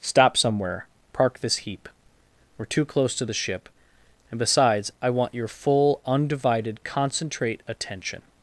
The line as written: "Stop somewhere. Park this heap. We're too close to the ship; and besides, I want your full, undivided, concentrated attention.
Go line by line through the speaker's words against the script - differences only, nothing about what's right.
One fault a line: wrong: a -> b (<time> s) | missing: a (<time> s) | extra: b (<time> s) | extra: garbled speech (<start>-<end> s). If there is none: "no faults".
wrong: concentrated -> concentrate (6.8 s)